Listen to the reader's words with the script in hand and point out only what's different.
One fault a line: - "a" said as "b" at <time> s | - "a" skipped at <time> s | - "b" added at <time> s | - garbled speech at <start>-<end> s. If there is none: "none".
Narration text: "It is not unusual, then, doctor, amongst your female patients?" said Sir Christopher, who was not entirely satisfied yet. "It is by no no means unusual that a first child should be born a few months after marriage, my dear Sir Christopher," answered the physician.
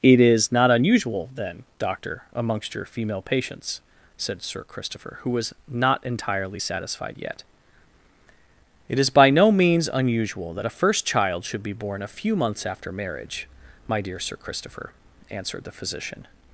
- "no" skipped at 9.5 s